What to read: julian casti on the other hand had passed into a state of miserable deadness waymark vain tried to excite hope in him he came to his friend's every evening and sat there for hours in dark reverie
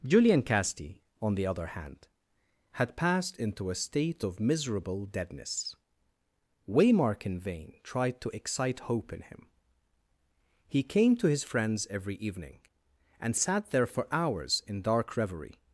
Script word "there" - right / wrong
right